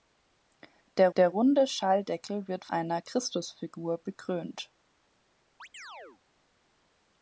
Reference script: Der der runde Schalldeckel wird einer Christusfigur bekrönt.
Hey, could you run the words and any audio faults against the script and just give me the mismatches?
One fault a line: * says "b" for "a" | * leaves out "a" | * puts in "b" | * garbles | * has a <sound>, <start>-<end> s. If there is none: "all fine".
* has a chirp, 5.6-6.2 s